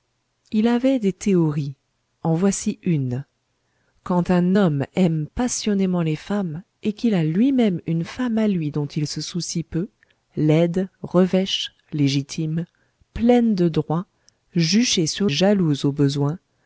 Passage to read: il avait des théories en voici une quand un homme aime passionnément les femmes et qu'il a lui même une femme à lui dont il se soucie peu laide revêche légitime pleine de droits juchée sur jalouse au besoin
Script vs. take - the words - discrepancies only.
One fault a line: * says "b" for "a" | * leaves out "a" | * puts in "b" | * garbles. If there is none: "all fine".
all fine